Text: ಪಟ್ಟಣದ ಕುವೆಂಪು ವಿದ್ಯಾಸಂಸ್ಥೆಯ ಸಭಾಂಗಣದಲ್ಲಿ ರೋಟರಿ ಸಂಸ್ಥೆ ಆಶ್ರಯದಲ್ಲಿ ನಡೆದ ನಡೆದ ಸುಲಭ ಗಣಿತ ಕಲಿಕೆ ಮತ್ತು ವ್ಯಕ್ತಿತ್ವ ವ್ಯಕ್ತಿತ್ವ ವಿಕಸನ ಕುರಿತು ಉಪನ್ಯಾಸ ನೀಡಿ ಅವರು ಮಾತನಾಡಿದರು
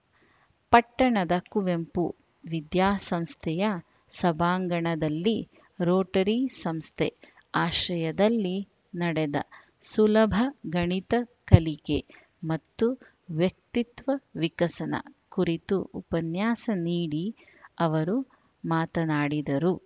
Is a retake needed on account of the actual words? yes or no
yes